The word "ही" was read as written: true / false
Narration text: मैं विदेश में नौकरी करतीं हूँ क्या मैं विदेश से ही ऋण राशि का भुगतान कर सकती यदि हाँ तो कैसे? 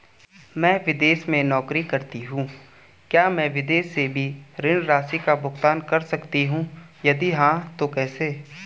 false